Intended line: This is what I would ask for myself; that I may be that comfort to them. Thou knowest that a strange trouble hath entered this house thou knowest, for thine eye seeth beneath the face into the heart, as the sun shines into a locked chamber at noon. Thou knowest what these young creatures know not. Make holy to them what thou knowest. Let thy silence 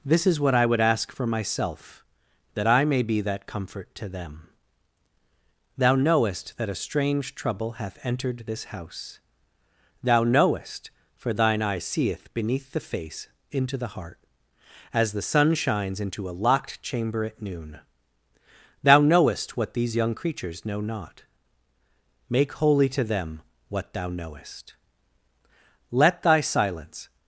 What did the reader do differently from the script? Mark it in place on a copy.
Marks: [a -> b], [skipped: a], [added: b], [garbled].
This is what I would ask for myself; that I may be that comfort to them. Thou knowest that a strange trouble hath entered this house thou knowest, for thine eye seeth beneath the face into the heart, as the sun shines into a locked chamber at noon. Thou knowest what these young creatures know not. Make holy to them what thou knowest. Let thy silence